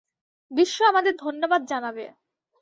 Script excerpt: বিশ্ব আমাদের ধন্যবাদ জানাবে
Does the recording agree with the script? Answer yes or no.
yes